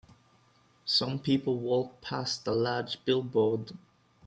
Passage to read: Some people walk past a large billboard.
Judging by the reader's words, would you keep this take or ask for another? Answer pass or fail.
pass